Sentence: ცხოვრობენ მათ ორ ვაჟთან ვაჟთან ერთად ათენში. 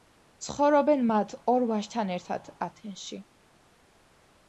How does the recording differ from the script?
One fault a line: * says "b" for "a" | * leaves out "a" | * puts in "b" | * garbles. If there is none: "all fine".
* leaves out "ვაჟთან"